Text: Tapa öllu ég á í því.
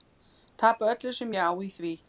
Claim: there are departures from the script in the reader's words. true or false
true